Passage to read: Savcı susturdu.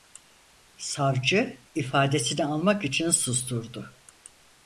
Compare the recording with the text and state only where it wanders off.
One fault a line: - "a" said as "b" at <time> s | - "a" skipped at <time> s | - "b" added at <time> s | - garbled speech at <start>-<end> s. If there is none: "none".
- "ifadesini almak için" added at 1.8 s